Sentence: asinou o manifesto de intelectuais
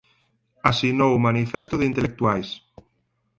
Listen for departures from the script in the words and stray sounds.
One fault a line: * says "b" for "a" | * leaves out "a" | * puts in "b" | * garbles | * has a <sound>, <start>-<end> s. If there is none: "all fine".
* has a dropout, 1.5-1.7 s